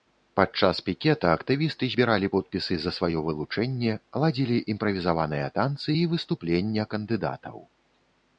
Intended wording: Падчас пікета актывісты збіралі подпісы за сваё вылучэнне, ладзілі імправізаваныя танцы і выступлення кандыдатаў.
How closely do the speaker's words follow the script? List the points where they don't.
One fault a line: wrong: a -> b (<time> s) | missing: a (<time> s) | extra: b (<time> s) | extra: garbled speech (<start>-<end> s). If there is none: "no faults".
no faults